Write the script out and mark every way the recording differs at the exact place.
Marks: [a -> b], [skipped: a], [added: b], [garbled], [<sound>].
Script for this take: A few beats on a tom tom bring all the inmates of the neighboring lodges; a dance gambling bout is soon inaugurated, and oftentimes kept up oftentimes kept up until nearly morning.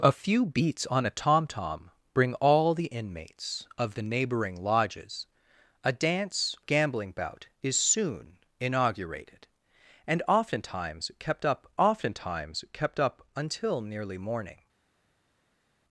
A few beats on a tom tom bring all the inmates of the neighboring lodges; a dance gambling bout is soon inaugurated, and oftentimes kept up oftentimes kept up until nearly morning.